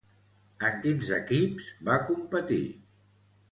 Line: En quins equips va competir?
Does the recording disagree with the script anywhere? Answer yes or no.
no